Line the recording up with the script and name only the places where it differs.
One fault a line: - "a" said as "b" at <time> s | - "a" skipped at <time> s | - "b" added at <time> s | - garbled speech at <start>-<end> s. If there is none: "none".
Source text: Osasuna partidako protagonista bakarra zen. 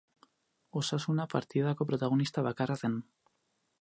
none